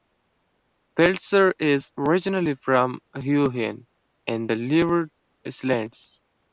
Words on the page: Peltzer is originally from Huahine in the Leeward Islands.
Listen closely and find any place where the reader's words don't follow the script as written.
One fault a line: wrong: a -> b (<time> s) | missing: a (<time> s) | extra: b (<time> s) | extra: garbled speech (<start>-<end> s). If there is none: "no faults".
no faults